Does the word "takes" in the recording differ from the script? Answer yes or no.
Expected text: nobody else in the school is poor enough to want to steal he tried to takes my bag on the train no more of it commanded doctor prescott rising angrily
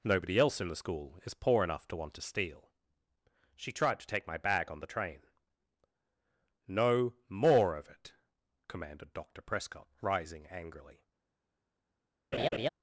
yes